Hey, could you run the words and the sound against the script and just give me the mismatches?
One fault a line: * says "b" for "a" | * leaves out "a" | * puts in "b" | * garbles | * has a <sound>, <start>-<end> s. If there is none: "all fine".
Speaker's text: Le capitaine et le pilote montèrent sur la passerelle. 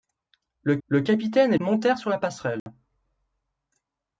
* puts in "le"
* leaves out "le pilote"
* has a dropout, 2.6-2.7 s